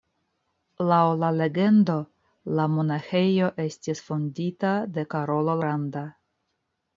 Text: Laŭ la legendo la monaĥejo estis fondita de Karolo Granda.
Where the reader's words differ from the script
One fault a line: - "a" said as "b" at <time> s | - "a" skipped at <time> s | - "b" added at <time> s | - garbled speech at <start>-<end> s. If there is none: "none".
none